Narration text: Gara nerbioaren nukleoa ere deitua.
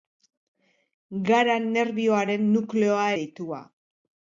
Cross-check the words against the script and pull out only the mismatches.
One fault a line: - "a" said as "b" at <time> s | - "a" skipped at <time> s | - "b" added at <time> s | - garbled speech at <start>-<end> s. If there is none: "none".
- "ere" skipped at 3.0 s